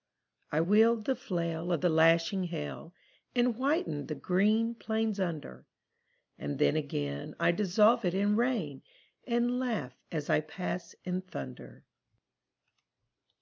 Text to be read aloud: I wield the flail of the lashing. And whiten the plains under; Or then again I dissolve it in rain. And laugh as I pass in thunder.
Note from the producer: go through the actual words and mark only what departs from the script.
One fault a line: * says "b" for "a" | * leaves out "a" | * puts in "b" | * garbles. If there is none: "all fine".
* puts in "hail"
* puts in "green"
* says "And" for "Or"